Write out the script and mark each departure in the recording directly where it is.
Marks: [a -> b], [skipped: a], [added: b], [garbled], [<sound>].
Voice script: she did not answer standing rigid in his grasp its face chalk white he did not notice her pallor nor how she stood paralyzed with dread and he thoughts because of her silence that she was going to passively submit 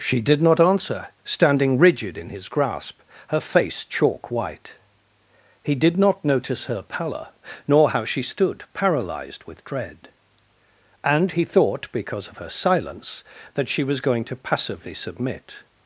she did not answer standing rigid in his grasp [its -> her] face chalk white he did not notice her pallor nor how she stood paralyzed with dread and he [thoughts -> thought] because of her silence that she was going to passively submit